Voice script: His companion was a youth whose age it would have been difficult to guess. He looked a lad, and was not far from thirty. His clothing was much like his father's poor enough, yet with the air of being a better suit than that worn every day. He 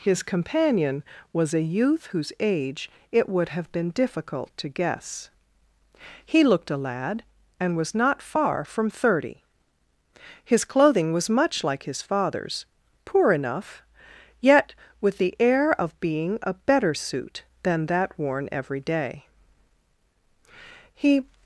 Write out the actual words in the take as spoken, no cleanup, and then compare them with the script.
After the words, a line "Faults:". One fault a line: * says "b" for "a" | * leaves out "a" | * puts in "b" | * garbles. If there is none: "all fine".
His companion was a youth whose age it would have been difficult to guess. He looked a lad, and was not far from thirty. His clothing was much like his father's poor enough, yet with the air of being a better suit than that worn every day. He
Faults:
all fine